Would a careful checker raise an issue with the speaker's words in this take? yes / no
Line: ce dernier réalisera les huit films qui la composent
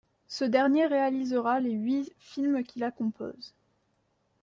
no